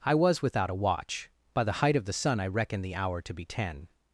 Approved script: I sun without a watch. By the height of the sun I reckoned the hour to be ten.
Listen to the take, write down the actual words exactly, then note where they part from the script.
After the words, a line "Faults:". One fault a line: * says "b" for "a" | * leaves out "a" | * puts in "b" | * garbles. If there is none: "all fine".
I was without a watch. By the height of the sun I reckoned the hour to be ten.
Faults:
* says "was" for "sun"